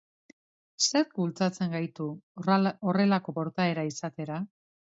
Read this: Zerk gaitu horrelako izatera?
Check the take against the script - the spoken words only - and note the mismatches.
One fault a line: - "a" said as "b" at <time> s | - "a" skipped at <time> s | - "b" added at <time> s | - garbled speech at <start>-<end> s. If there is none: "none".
- "bultzatzen" added at 1.2 s
- "portaera" added at 3.4 s